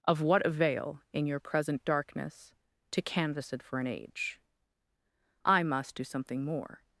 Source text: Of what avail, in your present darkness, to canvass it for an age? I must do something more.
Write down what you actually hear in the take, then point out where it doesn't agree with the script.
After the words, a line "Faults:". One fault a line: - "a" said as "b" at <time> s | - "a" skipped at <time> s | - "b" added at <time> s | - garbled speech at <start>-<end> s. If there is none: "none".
Of what avail, in your present darkness, to canvass it for an age? I must do something more.
Faults:
none